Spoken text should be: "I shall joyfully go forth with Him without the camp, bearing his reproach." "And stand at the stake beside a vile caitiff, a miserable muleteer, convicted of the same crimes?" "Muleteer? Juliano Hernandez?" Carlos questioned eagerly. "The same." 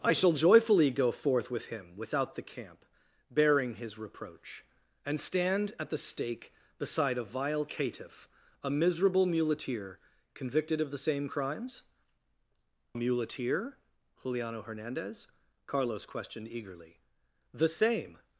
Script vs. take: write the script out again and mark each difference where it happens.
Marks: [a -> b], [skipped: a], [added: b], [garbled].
"I shall joyfully go forth with Him without the camp, bearing his reproach." "And stand at the stake beside a vile caitiff, a miserable muleteer, convicted of the same crimes?" "Muleteer? Juliano Hernandez?" Carlos questioned eagerly. "The same."